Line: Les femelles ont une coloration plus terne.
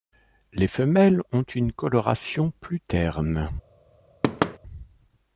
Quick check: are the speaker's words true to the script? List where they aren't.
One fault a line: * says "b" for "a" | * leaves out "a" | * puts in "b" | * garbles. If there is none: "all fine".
all fine